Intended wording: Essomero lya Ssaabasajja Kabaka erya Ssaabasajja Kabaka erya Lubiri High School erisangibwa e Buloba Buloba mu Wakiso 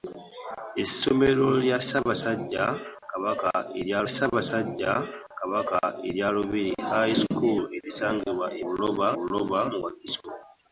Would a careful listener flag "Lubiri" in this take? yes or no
no